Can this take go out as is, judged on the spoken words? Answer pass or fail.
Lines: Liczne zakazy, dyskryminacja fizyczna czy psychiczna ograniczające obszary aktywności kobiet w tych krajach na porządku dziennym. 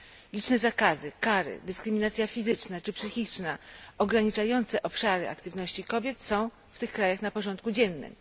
fail